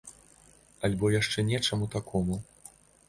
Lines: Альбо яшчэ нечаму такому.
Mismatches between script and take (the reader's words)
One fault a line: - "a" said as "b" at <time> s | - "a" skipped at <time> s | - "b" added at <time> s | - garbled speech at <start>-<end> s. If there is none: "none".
none